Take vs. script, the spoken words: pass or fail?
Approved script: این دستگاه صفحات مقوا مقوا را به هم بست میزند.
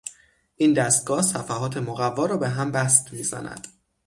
fail